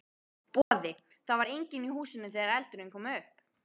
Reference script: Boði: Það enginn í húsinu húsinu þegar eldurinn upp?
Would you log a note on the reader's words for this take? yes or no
yes